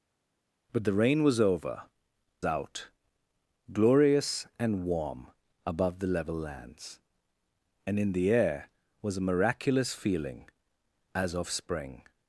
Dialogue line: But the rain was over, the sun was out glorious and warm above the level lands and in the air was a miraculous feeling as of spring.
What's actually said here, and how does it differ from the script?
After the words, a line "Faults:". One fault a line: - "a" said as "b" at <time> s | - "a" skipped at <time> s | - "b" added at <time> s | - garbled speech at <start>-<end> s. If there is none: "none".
But the rain was over, out glorious and warm above the level lands and in the air was a miraculous feeling as of spring.
Faults:
- "the sun was" skipped at 1.8 s